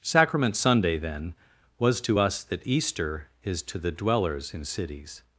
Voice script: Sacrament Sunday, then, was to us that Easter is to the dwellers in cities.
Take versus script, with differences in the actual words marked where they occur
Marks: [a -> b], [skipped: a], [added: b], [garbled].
Sacrament Sunday, then, was to us that Easter is to the dwellers in cities.